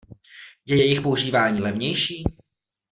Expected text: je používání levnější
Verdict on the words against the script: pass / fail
fail